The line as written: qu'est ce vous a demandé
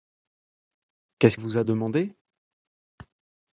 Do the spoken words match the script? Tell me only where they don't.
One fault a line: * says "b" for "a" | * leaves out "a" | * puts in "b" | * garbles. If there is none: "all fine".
all fine